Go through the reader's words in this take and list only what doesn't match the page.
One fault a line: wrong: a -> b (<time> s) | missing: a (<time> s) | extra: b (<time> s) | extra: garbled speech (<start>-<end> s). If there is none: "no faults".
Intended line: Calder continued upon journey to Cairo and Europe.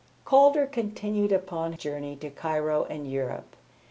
no faults